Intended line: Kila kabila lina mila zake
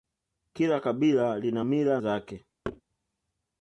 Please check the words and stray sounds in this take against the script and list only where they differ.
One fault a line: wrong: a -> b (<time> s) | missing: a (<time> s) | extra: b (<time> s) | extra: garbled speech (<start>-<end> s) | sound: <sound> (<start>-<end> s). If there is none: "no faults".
sound: thud (2.6-2.8 s)